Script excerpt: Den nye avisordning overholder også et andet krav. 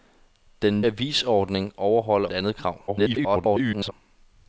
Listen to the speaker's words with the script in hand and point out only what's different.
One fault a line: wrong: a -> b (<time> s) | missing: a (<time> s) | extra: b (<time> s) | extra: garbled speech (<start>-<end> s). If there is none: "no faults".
missing: nye (0.8 s)
missing: også (2.3 s)
extra: garbled speech (2.9-3.9 s)